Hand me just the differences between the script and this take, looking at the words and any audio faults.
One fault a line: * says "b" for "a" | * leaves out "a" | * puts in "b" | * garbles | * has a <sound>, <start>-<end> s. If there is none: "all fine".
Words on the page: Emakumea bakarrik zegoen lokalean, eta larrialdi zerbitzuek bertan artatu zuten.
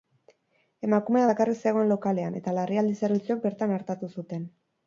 all fine